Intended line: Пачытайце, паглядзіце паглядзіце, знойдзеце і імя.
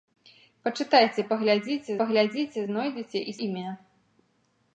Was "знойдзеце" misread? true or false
false